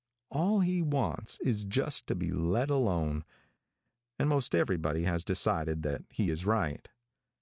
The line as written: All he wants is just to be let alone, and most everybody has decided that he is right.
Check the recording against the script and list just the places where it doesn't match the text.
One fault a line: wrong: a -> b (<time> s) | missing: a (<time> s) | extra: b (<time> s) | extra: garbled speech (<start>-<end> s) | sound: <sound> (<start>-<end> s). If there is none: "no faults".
no faults